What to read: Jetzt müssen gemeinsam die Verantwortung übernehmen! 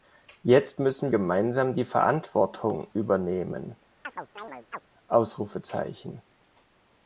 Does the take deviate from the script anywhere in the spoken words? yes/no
no